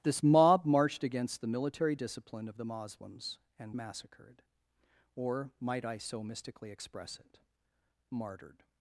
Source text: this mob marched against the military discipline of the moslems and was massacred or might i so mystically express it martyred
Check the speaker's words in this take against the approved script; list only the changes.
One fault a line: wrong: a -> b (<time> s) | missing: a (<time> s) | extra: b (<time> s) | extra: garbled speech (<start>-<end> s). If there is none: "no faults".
missing: was (3.7 s)